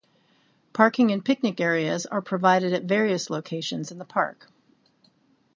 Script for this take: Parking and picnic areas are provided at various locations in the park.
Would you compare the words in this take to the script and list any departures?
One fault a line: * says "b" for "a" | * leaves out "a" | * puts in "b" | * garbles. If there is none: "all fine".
all fine